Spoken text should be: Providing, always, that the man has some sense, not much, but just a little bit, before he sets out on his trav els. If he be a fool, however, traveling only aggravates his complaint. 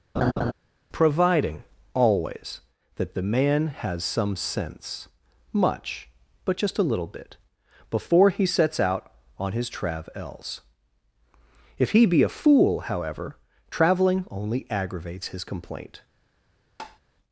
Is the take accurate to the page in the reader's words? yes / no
no